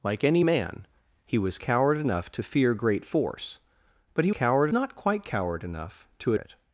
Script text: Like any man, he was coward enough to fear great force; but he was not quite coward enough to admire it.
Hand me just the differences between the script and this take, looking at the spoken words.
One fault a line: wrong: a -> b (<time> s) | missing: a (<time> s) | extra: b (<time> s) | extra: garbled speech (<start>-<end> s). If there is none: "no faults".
wrong: was -> coward (4.3 s)
missing: admire (6.3 s)